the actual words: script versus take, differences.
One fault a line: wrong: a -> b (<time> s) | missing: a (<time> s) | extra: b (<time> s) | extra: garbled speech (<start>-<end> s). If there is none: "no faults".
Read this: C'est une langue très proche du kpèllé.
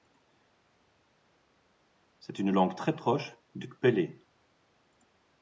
no faults